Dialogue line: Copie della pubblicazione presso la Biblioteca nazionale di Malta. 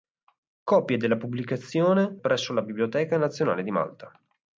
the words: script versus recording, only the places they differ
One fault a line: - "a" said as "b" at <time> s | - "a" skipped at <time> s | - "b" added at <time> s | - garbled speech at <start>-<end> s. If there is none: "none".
none